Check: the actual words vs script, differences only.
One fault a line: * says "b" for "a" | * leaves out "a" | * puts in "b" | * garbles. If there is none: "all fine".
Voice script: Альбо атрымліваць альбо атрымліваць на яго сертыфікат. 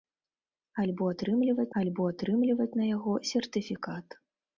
all fine